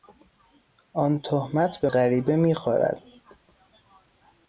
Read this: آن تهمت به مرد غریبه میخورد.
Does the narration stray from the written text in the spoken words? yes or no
yes